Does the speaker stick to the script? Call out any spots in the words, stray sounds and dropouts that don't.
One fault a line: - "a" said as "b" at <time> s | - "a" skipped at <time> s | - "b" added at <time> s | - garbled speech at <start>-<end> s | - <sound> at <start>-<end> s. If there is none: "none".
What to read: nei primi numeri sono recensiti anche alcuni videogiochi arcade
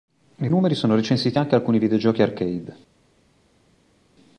- "primi" skipped at 0.5 s